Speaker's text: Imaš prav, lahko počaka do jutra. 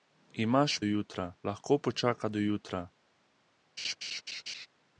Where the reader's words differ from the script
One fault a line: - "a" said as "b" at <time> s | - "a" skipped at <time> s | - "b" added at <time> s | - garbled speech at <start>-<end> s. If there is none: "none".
- "prav" said as "jutra" at 0.8 s